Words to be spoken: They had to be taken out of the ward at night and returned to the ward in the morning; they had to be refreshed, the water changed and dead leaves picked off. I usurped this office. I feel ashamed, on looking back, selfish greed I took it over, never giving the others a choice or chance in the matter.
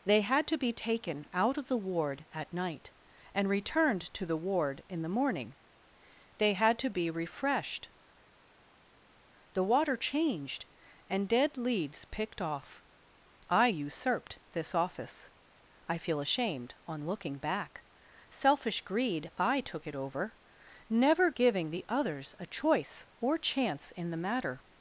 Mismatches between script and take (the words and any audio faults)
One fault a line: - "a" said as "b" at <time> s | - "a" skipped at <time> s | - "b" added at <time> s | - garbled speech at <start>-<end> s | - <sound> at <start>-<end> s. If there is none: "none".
none